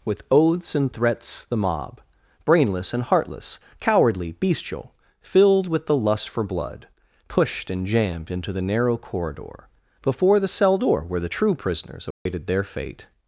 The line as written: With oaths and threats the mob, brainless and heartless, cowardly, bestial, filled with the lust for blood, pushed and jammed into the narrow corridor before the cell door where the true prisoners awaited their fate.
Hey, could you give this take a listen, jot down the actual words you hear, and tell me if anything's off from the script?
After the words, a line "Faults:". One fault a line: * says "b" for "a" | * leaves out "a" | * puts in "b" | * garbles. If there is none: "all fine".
With oaths and threats the mob, brainless and heartless, cowardly, bestial, filled with the lust for blood, pushed and jammed into the narrow corridor before the cell door where the true prisoners awaited their fate.
Faults:
all fine